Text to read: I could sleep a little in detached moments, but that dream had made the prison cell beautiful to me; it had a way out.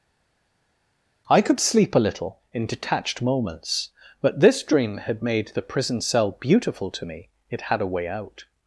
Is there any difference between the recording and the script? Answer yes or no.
yes